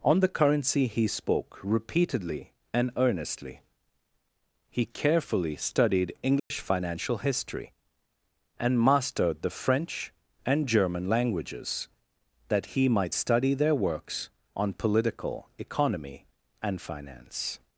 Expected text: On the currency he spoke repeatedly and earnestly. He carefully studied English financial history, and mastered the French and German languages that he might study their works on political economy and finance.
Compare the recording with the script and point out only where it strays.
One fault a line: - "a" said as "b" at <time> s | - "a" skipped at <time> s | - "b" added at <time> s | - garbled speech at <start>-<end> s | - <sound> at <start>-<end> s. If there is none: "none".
- dropout at 6.4-6.5 s